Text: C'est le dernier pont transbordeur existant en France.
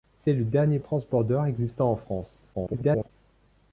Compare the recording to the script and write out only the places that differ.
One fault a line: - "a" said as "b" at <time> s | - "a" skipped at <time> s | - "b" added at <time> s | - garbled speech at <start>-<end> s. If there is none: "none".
- "pont" skipped at 0.8 s
- garbled speech at 2.5-3.1 s